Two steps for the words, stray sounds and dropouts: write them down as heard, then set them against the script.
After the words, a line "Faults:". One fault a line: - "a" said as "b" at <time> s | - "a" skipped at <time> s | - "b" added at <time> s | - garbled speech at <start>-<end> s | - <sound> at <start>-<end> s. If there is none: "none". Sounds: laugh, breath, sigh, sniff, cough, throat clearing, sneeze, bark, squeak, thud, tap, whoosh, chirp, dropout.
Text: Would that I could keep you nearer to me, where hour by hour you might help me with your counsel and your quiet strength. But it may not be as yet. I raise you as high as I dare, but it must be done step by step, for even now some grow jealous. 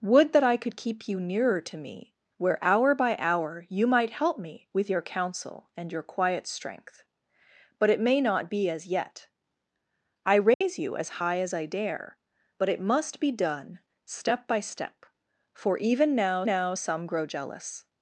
Would that I could keep you nearer to me, where hour by hour you might help me with your counsel and your quiet strength. But it may not be as yet. I raise you as high as I dare, but it must be done step by step, for even now now some grow jealous.
Faults:
- dropout at 10.5-10.6 s
- "now" added at 16.4 s